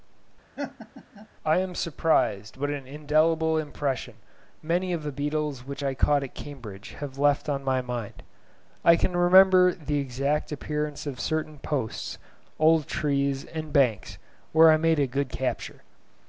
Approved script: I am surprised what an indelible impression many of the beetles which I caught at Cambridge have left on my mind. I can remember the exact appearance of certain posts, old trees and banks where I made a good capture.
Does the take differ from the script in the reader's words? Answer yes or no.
no